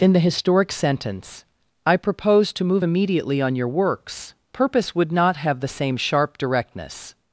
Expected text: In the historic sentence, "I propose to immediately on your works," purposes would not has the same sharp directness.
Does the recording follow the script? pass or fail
fail